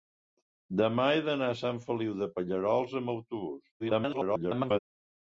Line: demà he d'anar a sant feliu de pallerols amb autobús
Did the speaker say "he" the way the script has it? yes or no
yes